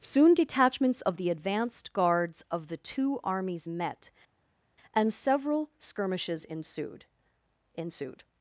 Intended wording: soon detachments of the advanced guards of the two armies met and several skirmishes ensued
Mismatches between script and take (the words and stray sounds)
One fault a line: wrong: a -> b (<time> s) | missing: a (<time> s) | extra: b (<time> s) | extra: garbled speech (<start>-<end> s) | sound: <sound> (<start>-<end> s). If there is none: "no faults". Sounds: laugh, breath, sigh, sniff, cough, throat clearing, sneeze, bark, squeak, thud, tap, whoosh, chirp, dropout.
extra: ensued (7.7 s)